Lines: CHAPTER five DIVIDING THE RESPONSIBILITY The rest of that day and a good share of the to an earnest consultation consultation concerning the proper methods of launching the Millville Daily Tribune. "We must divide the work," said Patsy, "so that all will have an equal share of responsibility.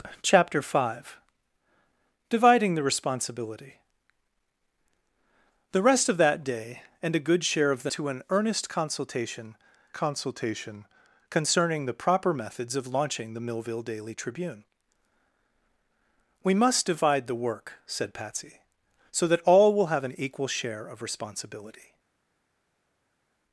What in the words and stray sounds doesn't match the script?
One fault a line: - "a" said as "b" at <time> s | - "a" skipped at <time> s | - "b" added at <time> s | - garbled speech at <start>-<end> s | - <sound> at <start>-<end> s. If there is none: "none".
none